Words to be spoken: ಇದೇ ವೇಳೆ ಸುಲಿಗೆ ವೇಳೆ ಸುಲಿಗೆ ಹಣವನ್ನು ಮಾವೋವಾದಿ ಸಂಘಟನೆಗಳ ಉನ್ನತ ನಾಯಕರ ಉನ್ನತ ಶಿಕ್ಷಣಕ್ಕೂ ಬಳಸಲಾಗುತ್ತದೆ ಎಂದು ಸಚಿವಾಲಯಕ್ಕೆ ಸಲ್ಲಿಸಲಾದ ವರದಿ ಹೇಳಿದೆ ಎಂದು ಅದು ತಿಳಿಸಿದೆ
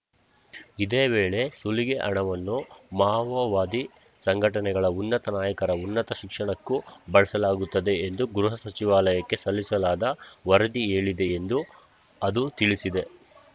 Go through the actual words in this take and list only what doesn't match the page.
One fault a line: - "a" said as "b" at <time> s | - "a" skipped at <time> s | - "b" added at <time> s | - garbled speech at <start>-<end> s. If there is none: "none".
- "ವೇಳೆ ಸುಲಿಗೆ" skipped at 2.0 s
- "ಗೃಹ" added at 8.3 s